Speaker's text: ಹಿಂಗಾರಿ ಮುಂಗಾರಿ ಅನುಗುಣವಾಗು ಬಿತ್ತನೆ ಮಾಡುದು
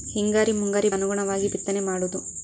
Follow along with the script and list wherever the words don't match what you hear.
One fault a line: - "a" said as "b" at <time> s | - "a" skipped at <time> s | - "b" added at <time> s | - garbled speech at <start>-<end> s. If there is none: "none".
none